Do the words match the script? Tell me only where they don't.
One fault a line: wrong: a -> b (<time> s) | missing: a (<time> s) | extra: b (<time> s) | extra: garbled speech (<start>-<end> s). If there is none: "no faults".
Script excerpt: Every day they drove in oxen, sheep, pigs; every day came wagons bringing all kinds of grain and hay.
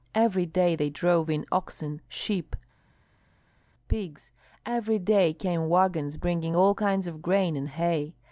no faults